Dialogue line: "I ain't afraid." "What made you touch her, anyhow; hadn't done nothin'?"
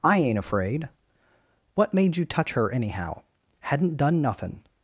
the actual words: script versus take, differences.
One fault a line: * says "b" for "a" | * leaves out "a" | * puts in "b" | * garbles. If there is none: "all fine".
all fine